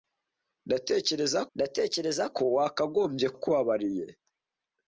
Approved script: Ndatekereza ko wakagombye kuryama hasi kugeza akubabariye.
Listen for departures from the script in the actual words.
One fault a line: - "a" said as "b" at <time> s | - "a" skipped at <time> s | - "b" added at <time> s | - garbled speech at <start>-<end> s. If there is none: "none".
- "ndatekereza" added at 1.5 s
- "kuryama hasi kugeza" skipped at 3.3 s